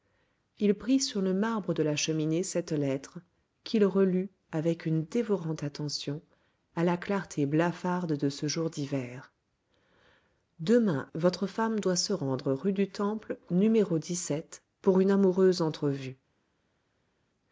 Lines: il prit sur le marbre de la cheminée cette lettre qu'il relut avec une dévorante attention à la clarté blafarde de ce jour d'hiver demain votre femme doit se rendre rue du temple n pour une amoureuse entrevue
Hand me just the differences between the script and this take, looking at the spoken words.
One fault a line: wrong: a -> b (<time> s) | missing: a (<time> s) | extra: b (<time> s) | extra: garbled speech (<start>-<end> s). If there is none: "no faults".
no faults